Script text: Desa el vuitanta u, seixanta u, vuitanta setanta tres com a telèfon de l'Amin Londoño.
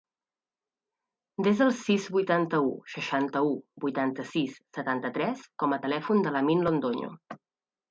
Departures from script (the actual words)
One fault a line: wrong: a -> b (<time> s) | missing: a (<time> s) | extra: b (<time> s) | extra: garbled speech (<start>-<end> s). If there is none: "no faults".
extra: sis (1.8 s)
extra: sis (4.3 s)